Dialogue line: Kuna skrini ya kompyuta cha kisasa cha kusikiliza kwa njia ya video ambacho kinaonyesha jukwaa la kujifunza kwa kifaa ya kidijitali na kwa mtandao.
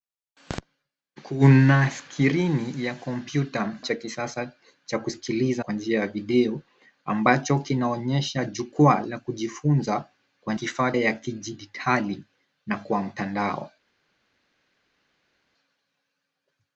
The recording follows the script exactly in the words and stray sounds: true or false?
true